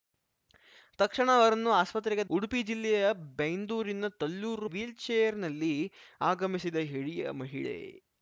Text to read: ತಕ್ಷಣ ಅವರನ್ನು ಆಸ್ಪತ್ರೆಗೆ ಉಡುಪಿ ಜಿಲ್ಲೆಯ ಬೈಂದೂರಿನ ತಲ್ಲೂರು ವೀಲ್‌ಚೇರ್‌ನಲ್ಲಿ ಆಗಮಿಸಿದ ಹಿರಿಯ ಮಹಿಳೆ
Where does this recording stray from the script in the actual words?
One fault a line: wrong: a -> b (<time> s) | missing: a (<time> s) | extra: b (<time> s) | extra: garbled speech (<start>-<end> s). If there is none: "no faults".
no faults